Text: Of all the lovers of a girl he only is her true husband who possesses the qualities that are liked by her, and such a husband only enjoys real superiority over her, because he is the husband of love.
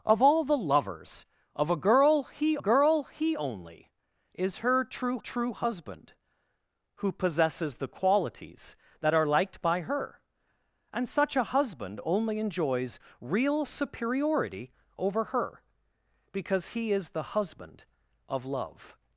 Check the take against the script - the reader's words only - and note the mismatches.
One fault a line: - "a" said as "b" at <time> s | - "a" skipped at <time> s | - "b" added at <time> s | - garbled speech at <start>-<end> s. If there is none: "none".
- "girl he" added at 2.6 s
- "true" added at 5.2 s